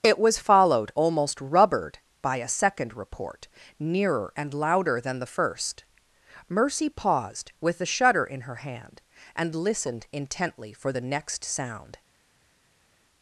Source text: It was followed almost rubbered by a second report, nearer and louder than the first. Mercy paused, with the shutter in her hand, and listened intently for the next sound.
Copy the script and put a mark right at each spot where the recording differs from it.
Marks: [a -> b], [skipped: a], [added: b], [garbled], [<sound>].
It was followed almost rubbered by a second report, nearer and louder than the first. Mercy paused, with the shutter in her hand, and listened intently for the next sound.